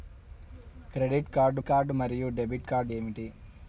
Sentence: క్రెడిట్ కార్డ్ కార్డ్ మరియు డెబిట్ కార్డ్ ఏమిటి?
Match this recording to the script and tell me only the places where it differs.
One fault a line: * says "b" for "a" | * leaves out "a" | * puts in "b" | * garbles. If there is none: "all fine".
all fine